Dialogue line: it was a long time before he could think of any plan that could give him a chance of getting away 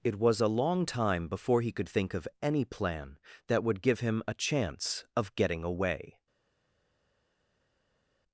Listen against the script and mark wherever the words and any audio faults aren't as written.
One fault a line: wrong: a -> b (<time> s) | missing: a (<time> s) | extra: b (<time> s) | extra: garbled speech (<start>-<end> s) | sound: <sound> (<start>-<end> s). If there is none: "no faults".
wrong: could -> would (3.6 s)